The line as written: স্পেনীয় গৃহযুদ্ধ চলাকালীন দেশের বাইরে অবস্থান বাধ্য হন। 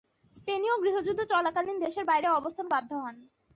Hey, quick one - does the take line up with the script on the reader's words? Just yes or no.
yes